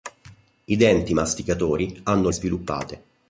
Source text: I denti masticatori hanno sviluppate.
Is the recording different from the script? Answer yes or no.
no